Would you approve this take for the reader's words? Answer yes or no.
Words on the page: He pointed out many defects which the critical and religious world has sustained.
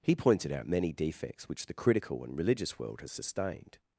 yes